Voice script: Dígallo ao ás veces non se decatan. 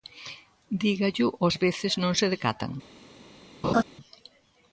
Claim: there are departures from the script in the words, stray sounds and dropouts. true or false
true